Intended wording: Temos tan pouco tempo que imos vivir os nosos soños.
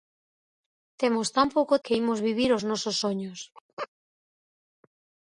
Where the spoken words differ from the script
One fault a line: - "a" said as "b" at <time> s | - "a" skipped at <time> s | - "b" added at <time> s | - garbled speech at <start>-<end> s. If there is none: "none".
- "tempo" skipped at 1.8 s